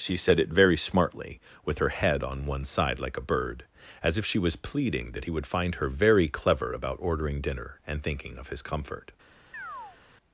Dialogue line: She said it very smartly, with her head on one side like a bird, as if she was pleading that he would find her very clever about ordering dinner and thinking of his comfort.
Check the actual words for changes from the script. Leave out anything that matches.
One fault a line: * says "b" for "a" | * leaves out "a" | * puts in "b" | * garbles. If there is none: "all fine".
all fine